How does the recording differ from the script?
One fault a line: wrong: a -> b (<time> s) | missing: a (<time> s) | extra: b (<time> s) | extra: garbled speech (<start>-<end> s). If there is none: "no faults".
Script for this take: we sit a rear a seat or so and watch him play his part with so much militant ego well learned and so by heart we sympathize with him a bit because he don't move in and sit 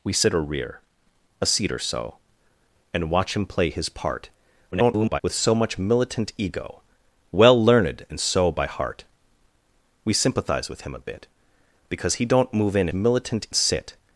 extra: garbled speech (4.7-5.2 s)
wrong: and -> militant (12.9 s)